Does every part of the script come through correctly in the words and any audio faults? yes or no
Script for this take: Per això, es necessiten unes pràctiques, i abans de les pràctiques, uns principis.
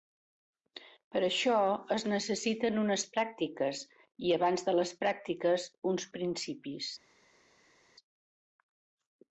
yes